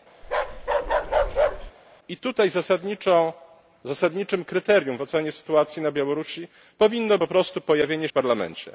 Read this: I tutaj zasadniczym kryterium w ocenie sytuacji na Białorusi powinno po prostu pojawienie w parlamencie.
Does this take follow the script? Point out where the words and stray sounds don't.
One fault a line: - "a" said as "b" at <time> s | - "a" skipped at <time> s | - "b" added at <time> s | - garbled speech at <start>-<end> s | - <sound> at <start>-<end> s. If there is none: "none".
- bark at 0.2-1.7 s